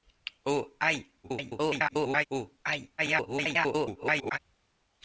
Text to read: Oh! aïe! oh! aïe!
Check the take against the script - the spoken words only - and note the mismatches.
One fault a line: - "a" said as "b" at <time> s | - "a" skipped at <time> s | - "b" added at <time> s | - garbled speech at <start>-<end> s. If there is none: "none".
- garbled speech at 1.2-2.3 s
- garbled speech at 3.0-4.4 s